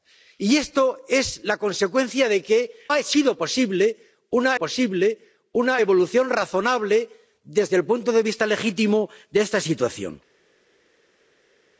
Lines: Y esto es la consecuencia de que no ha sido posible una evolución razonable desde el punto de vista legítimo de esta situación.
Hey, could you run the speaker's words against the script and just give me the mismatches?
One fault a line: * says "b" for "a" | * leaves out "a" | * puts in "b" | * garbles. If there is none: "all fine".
* leaves out "no"
* puts in "posible una"